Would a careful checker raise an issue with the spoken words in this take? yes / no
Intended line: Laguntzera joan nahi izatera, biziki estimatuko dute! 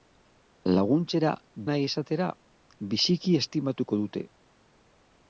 yes